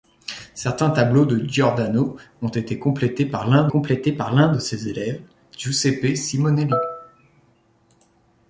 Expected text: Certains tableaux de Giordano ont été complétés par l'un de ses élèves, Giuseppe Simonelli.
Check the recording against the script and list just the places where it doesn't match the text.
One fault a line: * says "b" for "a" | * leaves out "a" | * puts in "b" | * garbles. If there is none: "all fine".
* puts in "complétés par l'un"